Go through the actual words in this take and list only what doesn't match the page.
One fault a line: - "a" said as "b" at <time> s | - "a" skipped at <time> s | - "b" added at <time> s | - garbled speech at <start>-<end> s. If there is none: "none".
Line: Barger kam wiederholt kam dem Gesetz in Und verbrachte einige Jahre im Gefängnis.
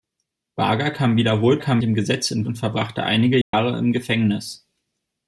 none